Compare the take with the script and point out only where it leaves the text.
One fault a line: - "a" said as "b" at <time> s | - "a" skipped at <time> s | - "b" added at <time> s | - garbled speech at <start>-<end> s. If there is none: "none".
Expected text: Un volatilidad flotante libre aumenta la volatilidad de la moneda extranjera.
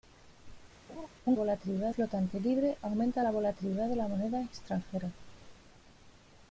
none